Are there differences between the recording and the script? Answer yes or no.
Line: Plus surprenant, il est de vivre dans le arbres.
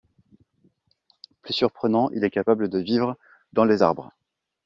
yes